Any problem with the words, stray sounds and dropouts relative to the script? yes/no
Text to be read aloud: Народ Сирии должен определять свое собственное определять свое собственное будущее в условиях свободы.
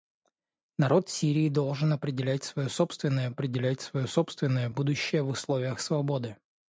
no